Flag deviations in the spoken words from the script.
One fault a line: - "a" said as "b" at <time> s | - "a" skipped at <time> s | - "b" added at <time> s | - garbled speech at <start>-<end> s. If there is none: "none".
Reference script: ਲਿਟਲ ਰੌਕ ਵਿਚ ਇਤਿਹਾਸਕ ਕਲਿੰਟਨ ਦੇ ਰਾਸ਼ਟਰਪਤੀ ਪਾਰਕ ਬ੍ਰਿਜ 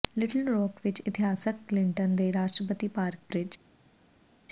none